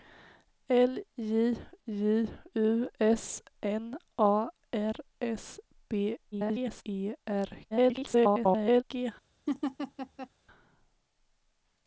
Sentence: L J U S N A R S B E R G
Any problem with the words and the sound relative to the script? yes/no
yes